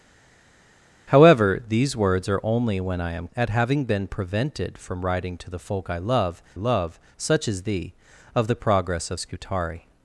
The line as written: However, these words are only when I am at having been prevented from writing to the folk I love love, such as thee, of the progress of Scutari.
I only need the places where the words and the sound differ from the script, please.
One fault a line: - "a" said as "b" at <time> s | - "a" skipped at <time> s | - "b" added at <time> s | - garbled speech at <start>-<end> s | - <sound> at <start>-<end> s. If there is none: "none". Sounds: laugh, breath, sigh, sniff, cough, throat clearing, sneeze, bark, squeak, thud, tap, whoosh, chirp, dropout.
none